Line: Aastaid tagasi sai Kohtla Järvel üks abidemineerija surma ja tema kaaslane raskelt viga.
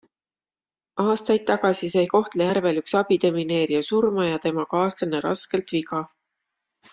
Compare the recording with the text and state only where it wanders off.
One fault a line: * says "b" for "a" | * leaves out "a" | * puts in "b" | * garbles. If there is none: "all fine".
all fine